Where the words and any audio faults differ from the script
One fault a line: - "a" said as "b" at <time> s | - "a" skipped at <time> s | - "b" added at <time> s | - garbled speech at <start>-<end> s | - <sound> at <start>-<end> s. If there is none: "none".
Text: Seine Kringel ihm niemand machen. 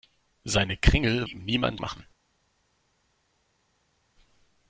none